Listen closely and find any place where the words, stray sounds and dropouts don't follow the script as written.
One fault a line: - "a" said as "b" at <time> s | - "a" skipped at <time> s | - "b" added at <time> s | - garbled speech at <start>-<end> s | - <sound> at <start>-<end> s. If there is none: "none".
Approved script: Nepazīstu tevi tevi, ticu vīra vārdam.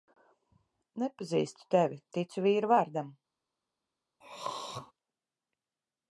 - "tevi" skipped at 2.0 s
- throat clearing at 4.2-4.9 s